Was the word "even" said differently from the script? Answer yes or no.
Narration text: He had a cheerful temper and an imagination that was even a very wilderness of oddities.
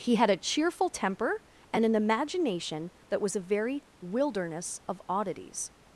yes